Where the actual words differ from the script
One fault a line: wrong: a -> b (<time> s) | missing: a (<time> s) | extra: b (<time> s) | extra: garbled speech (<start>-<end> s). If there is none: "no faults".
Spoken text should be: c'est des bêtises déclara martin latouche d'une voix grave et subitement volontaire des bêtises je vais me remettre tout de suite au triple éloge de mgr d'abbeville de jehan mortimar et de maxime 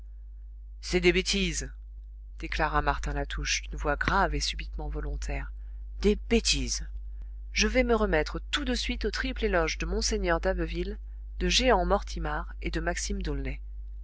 no faults